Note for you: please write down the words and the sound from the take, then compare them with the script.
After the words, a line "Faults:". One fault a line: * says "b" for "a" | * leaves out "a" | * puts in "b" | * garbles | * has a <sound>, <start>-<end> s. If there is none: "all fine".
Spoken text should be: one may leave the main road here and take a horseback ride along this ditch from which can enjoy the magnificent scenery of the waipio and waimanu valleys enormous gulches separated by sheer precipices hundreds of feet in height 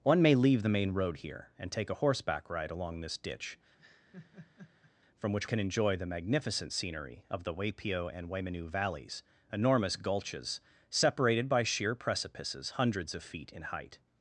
one may leave the main road here and take a horseback ride along this ditch from which can enjoy the magnificent scenery of the waipio and waimanu valleys enormous gulches separated by sheer precipices hundreds of feet in height
Faults:
* has a laugh, 3.8-4.9 s